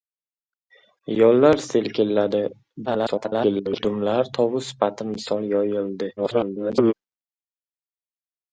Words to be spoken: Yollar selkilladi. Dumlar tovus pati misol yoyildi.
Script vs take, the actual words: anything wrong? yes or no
yes